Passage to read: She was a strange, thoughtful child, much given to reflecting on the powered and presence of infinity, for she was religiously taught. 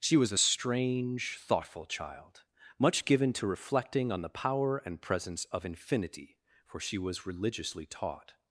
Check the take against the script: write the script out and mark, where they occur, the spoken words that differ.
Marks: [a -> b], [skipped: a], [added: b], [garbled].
She was a strange, thoughtful child, much given to reflecting on the [powered -> power] and presence of infinity, for she was religiously taught.